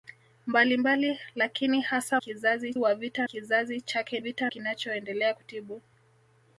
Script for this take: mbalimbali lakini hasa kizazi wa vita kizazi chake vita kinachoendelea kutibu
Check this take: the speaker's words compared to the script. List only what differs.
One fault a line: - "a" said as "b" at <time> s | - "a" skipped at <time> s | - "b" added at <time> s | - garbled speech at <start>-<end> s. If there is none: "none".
none